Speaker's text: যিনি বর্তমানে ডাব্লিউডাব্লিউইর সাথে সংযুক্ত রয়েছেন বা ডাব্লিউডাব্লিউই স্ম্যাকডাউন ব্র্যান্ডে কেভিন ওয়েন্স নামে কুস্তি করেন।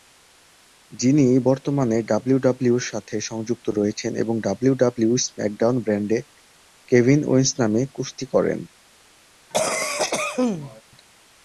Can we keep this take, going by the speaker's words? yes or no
no